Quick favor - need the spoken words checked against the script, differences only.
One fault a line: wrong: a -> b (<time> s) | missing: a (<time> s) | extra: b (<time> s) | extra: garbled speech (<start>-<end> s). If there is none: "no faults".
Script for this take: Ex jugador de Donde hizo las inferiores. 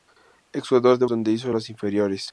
no faults